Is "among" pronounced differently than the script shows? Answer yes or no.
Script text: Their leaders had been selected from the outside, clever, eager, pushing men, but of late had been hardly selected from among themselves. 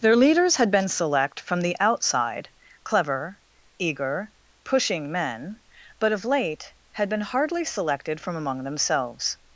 no